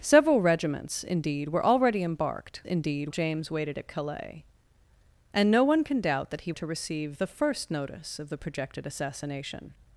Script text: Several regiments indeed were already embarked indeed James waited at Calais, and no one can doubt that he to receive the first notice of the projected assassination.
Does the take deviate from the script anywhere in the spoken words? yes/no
no